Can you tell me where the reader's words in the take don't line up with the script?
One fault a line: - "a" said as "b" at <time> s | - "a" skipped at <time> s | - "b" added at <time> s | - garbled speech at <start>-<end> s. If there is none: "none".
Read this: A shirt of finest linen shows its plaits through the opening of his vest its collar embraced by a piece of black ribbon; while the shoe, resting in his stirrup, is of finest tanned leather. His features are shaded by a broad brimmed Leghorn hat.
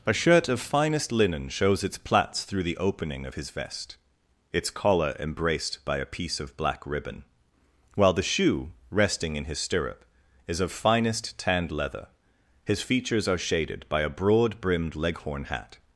none